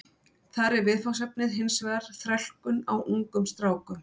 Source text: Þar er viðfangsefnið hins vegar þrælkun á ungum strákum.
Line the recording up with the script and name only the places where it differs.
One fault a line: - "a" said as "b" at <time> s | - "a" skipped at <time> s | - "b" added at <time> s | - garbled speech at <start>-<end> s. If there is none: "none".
none